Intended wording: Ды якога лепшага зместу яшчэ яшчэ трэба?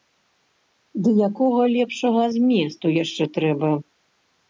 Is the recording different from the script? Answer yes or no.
yes